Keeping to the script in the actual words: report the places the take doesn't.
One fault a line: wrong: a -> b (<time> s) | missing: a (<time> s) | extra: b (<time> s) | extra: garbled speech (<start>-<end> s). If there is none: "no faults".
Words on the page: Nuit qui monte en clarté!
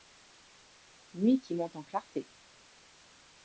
no faults